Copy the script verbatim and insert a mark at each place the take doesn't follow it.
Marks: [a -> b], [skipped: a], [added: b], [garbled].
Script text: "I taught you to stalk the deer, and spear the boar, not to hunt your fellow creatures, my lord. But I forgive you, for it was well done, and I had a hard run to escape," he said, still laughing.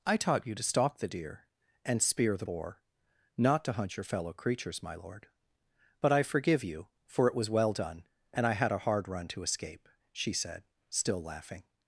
"I taught you to stalk the deer, and spear the boar, not to hunt your fellow creatures, my lord. But I forgive you, for it was well done, and I had a hard run to escape," [he -> she] said, still laughing.